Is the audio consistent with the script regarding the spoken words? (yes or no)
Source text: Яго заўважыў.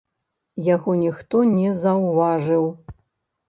no